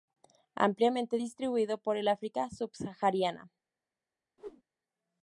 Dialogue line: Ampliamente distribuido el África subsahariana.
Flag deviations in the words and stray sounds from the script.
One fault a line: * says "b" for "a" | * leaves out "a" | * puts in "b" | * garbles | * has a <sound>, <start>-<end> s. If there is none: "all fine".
* puts in "por"
* has a whoosh, 4.4-4.6 s